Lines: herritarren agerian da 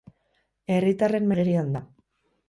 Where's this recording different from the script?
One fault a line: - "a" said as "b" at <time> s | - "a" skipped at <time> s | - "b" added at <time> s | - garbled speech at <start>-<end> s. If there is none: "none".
none